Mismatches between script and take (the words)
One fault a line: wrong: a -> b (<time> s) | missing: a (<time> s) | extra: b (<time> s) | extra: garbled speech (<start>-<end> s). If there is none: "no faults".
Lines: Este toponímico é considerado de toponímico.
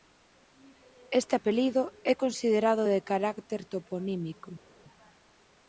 wrong: toponímico -> apelido (1.4 s)
extra: carácter (3.1 s)